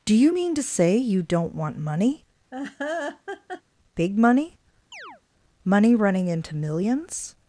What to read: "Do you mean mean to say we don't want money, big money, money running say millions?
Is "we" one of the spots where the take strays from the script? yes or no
yes